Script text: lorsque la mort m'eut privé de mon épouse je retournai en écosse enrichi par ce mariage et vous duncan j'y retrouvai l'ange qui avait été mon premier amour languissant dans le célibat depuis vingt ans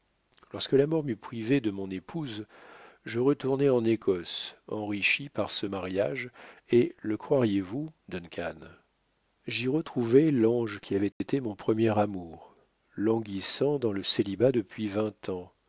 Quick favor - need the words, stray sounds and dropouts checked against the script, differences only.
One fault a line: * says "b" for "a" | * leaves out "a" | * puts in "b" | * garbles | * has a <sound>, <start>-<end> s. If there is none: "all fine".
* puts in "le croiriez"
* has a dropout, 11.1-11.2 s